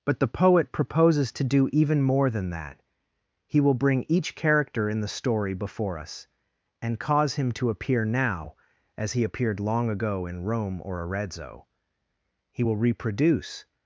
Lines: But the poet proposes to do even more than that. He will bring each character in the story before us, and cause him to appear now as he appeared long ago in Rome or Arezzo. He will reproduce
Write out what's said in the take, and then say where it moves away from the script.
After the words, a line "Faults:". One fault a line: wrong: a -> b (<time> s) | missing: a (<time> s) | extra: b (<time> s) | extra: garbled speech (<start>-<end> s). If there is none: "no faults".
But the poet proposes to do even more than that. He will bring each character in the story before us, and cause him to appear now as he appeared long ago in Rome or Arezzo. He will reproduce
Faults:
no faults